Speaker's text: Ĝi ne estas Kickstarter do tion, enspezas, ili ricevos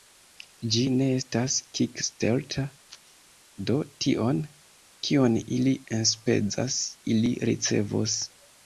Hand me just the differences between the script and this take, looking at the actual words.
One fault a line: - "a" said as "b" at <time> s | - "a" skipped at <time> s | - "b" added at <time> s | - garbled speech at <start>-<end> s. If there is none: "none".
- "kion ili" added at 5.1 s